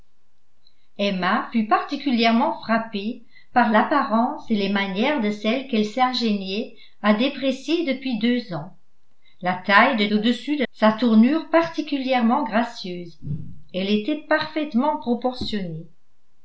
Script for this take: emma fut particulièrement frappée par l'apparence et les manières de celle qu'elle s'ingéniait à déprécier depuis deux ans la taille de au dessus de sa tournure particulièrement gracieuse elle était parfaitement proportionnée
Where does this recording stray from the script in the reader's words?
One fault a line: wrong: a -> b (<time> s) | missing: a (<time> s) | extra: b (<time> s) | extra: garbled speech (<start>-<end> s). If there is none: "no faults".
no faults